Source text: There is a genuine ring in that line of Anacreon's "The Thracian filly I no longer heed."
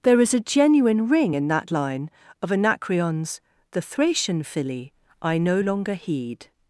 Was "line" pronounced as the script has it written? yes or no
yes